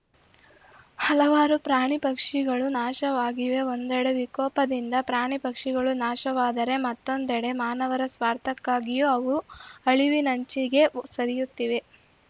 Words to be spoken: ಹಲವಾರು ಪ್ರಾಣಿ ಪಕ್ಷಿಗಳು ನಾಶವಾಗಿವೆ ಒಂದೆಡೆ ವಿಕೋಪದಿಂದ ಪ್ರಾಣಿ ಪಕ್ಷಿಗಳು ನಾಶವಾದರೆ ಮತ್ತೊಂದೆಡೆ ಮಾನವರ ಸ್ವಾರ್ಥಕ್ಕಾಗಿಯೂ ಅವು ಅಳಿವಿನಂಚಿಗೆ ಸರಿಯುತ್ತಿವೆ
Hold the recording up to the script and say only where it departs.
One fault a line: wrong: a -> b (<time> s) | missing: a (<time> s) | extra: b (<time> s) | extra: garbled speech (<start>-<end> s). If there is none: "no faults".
no faults